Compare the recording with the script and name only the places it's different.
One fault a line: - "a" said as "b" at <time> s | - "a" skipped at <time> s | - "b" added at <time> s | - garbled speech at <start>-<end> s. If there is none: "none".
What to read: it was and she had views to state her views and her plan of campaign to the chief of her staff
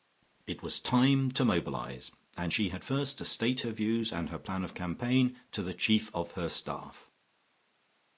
- "time to mobilise" added at 0.8 s
- "views" said as "first" at 2.8 s